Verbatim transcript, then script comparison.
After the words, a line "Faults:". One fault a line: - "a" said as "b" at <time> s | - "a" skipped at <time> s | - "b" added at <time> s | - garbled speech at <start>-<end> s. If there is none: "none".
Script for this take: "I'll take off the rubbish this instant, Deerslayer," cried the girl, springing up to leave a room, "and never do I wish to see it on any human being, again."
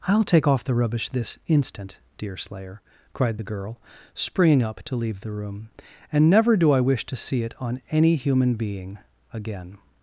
"I'll take off the rubbish this instant, Deerslayer," cried the girl, springing up to leave the room, "and never do I wish to see it on any human being, again."
Faults:
- "a" said as "the" at 5.2 s